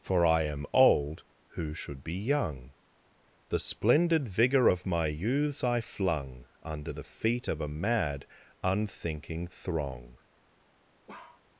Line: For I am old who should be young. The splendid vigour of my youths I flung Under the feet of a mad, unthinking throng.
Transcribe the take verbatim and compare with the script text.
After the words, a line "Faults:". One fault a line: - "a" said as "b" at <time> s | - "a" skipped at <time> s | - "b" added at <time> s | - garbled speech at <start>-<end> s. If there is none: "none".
For I am old who should be young. The splendid vigour of my youths I flung Under the feet of a mad, unthinking throng.
Faults:
none